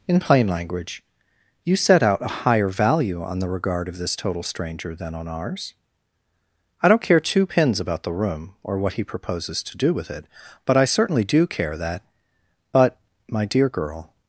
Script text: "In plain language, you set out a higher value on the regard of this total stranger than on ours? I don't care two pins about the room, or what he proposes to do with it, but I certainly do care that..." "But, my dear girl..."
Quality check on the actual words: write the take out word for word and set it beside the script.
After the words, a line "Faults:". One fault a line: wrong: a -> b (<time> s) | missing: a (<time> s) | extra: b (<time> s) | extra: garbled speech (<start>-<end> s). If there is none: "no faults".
"In plain language, you set out a higher value on the regard of this total stranger than on ours? I don't care two pins about the room, or what he proposes to do with it, but I certainly do care that..." "But, my dear girl..."
Faults:
no faults